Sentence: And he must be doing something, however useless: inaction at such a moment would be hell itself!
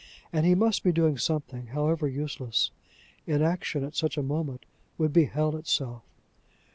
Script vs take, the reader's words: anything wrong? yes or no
no